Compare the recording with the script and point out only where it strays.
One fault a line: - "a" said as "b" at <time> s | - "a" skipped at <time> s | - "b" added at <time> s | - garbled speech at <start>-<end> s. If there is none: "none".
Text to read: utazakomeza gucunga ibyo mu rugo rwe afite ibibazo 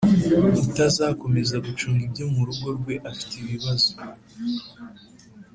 none